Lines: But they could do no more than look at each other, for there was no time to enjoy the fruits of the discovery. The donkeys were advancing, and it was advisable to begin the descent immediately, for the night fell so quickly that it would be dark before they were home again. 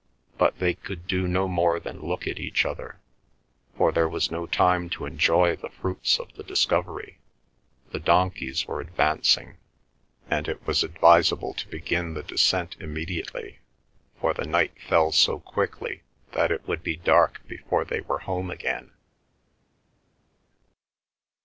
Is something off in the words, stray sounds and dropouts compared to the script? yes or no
no